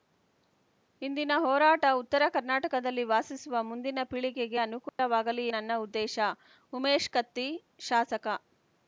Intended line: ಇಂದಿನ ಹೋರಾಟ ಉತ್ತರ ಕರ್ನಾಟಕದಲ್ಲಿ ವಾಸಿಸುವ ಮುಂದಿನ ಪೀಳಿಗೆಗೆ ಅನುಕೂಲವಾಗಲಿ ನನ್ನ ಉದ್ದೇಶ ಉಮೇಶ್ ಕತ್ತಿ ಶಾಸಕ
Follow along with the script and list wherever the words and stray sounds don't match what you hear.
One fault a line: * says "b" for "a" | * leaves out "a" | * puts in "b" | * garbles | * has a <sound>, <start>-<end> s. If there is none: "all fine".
* has a dropout, 4.9-5.0 s